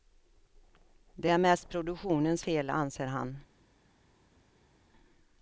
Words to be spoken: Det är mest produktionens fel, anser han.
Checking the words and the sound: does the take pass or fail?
pass